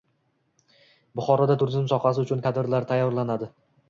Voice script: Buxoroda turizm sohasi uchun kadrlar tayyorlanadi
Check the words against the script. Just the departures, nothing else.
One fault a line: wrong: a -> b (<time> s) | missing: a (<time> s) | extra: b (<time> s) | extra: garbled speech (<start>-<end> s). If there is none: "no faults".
no faults